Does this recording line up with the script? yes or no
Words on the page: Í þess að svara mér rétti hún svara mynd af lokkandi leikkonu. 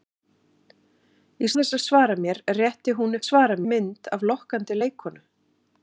yes